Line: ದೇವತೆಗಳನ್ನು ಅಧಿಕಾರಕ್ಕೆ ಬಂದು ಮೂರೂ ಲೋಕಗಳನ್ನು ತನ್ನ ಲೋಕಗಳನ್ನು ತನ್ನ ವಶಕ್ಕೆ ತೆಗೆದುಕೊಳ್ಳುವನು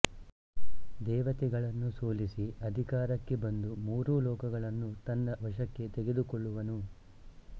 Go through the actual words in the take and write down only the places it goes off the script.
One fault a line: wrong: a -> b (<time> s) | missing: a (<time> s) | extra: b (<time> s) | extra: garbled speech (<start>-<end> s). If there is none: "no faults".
extra: ಸೋಲಿಸಿ (1.9 s)
missing: ಲೋಕಗಳನ್ನು ತನ್ನ (5.4 s)